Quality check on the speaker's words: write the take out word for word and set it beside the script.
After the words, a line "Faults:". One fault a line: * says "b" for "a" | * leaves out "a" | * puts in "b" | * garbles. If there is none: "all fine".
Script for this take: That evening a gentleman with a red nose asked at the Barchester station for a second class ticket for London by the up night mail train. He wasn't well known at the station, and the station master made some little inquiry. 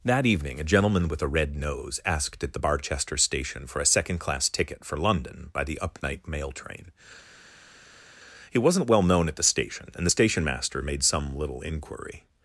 That evening a gentleman with a red nose asked at the Barchester station for a second class ticket for London by the up night mail train. He wasn't well known at the station, and the station master made some little inquiry.
Faults:
all fine